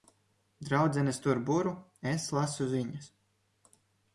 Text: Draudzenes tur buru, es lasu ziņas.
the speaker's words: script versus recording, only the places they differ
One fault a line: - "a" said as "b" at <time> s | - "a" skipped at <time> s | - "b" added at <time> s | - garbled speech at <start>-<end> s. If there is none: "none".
none